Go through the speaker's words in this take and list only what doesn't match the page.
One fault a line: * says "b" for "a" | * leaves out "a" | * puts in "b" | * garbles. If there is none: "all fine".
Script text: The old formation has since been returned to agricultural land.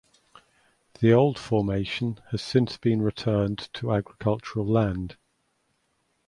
all fine